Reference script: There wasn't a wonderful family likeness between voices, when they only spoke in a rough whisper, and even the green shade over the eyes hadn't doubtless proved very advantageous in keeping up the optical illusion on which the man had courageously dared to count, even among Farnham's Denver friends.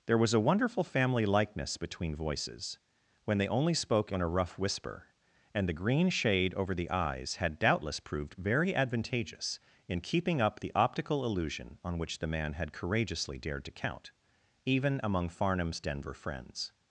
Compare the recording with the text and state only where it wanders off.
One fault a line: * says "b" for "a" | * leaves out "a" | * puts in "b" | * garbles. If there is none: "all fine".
* says "was" for "wasn't"
* leaves out "even"
* says "had" for "hadn't"